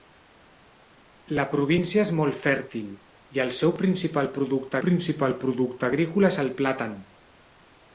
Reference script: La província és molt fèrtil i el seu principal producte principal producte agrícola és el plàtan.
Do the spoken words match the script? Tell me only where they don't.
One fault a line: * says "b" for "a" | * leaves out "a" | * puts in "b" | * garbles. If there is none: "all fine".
all fine